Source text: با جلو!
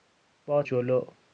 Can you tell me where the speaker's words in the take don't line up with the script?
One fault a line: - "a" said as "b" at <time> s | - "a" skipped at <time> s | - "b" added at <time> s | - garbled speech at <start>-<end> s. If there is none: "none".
none